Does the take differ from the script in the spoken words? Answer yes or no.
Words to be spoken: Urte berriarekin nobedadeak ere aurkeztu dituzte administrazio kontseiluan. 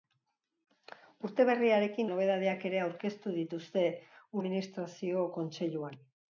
no